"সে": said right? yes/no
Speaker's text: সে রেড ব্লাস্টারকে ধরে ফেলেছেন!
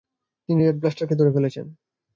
no